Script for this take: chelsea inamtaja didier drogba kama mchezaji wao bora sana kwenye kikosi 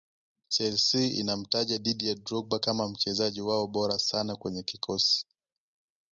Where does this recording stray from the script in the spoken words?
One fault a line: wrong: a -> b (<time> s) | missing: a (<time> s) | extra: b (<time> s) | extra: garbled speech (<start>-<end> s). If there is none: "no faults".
no faults